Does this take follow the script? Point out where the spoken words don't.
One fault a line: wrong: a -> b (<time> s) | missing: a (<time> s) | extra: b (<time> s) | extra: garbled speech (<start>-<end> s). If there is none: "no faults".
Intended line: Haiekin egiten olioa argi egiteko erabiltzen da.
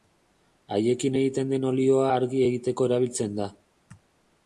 extra: den (1.5 s)